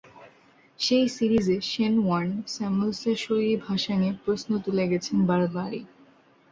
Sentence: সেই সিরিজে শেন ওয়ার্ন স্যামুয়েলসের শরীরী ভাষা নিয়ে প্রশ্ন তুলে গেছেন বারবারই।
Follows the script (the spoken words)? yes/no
yes